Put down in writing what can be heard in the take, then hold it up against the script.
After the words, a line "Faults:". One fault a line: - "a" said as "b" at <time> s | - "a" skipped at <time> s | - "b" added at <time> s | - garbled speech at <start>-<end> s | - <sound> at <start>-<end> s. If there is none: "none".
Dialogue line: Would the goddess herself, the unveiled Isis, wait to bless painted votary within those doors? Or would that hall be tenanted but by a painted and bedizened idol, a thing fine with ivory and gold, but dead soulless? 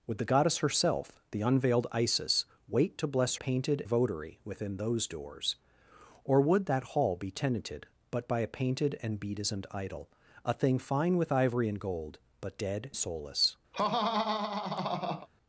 Would the goddess herself, the unveiled Isis, wait to bless painted votary within those doors? Or would that hall be tenanted but by a painted and bedizened idol, a thing fine with ivory and gold, but dead soulless?
Faults:
- laugh at 13.7-15.3 s